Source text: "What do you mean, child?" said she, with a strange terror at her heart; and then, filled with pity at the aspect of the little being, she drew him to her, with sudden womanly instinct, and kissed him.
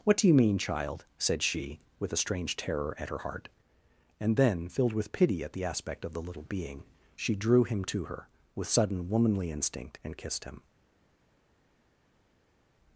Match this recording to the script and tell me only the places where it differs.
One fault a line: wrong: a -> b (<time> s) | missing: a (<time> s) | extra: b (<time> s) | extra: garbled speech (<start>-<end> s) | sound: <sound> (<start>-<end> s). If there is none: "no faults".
no faults